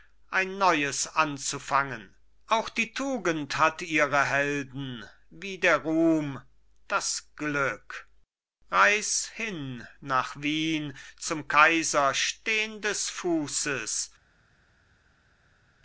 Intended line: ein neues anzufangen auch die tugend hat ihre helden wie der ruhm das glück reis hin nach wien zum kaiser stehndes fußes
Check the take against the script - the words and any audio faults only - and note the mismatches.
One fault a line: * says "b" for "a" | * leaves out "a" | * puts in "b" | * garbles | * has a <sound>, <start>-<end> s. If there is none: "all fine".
all fine